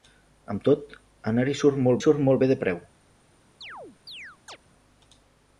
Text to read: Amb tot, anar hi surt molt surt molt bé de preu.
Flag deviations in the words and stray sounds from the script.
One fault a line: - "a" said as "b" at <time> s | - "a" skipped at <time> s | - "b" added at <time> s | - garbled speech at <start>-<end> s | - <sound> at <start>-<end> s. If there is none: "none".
- chirp at 3.6-4.6 s